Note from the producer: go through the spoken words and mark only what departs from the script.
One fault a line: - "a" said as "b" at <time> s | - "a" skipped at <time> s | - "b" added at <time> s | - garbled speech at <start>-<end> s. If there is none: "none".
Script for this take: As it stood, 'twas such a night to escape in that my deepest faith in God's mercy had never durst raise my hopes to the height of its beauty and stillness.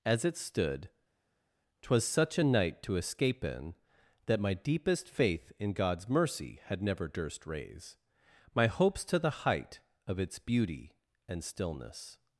none